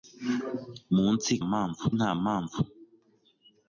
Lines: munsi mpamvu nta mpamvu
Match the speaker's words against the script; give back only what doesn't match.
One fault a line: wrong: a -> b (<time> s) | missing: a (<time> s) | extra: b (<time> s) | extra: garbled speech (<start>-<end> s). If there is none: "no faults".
no faults